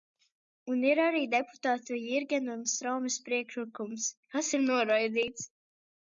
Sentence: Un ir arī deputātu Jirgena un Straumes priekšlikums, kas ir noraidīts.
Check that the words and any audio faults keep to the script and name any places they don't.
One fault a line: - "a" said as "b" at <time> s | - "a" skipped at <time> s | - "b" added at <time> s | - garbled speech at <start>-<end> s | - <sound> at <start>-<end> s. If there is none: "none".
none